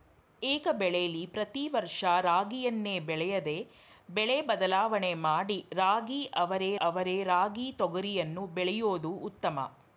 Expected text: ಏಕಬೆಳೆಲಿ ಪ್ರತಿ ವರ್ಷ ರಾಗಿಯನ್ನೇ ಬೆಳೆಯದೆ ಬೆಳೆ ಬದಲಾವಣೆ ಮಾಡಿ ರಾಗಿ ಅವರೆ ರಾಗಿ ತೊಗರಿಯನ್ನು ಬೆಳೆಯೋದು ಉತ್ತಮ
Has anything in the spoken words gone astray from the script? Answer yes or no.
yes